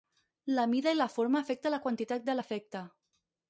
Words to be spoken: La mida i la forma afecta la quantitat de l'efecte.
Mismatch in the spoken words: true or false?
false